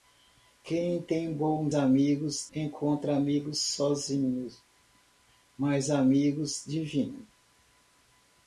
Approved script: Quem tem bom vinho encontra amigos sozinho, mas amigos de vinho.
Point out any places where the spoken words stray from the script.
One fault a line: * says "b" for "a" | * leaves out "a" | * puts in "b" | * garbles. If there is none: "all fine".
* says "amigos" for "vinho"